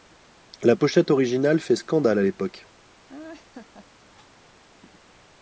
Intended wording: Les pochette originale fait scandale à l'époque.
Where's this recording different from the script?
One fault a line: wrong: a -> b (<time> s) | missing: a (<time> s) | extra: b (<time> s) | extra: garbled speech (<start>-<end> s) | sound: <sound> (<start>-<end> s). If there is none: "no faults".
wrong: Les -> La (0.6 s)
sound: laugh (3.1-3.9 s)